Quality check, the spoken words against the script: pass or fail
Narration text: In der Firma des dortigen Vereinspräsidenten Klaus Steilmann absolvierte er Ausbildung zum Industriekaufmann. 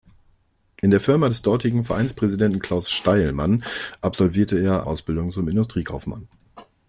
pass